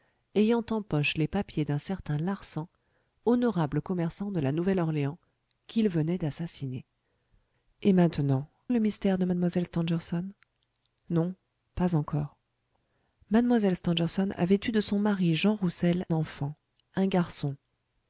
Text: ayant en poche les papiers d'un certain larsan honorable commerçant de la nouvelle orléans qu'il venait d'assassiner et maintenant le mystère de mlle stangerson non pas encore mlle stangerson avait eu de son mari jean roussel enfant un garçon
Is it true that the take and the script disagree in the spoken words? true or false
false